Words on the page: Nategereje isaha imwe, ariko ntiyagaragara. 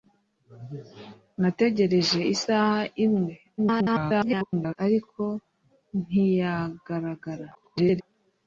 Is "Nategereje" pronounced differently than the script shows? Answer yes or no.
no